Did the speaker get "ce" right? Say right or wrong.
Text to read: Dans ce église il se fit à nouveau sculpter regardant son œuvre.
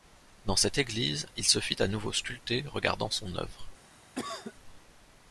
wrong